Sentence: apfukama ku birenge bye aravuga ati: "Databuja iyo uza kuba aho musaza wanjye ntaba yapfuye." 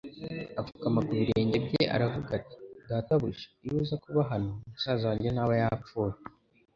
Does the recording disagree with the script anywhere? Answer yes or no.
yes